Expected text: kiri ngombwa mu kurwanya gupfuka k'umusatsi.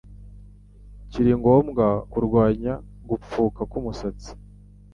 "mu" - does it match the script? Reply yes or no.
no